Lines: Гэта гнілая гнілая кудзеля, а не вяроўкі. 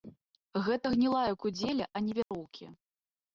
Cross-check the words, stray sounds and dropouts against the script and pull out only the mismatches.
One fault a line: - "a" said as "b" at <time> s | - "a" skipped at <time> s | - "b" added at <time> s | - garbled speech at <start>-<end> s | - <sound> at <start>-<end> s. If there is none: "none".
- "гнілая" skipped at 1.3 s
- dropout at 2.2-2.3 s